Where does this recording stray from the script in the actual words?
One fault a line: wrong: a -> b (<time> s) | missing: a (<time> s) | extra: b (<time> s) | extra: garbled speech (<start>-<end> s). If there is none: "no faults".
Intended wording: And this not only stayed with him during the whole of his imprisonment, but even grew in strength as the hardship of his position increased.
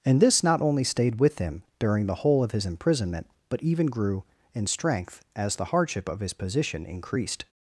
no faults